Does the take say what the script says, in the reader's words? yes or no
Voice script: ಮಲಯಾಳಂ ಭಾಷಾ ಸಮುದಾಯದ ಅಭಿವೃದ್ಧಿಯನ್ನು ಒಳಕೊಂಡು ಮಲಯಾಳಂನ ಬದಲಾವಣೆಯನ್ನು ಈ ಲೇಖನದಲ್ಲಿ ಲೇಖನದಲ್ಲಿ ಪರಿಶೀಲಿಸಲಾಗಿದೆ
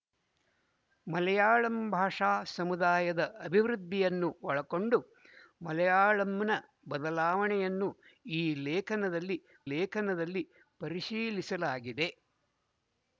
yes